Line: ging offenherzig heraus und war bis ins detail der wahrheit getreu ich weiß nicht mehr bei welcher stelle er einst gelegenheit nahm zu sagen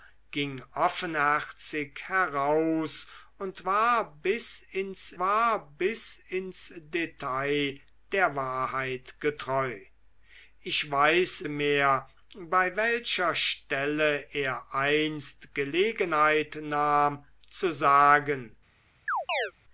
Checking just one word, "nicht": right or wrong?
wrong